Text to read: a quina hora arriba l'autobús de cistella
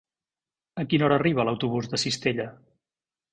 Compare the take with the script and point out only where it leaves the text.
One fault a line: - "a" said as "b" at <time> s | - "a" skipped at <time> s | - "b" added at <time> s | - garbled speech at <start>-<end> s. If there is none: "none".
none